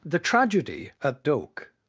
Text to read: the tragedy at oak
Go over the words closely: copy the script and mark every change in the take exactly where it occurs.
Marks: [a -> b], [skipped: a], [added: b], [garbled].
the tragedy at oak